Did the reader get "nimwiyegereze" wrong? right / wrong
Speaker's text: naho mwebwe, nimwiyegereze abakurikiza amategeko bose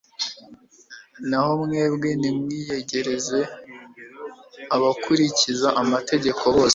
right